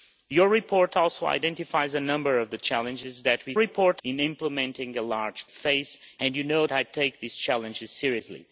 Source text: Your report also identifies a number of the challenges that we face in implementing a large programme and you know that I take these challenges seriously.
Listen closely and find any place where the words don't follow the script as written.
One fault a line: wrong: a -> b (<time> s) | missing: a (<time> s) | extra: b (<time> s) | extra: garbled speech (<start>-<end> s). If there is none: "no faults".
wrong: face -> report (3.6 s)
wrong: programme -> face (5.5 s)
missing: that (6.7 s)